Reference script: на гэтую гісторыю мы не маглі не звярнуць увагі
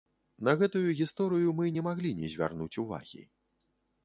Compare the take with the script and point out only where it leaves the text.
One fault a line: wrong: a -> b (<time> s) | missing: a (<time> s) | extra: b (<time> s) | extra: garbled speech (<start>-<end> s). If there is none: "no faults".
no faults